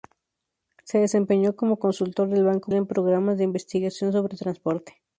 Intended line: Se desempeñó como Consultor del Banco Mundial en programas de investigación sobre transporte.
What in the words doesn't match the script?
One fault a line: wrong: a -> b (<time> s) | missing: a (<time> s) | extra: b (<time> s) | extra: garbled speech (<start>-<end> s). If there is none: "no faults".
missing: Mundial (2.7 s)